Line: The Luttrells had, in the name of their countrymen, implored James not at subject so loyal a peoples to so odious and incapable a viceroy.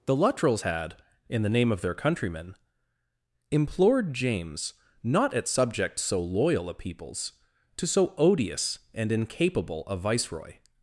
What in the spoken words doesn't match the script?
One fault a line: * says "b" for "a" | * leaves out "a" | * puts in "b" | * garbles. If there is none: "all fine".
all fine